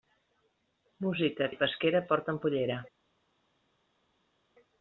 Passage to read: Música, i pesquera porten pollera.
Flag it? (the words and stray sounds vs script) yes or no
no